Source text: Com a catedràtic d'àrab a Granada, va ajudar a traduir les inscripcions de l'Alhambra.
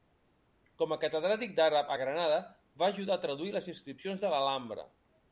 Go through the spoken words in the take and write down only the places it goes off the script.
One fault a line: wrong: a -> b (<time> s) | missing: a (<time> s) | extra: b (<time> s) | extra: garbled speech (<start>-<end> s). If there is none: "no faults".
no faults